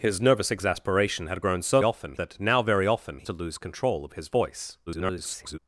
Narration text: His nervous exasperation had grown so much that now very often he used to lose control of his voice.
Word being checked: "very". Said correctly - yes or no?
yes